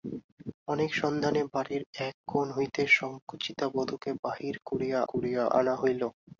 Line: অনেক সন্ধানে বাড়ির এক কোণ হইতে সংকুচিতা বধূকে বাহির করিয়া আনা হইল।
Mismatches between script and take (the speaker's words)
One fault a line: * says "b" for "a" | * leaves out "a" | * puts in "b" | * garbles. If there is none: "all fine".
* puts in "করিয়া"